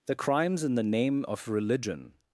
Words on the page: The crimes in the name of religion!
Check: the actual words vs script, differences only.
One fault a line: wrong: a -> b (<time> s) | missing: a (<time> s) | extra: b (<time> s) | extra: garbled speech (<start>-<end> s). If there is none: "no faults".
no faults